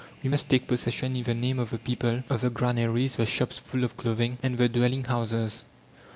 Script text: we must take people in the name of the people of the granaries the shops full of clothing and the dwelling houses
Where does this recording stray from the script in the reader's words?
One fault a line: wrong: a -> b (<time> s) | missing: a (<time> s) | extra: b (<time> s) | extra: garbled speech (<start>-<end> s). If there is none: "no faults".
wrong: people -> possession (0.7 s)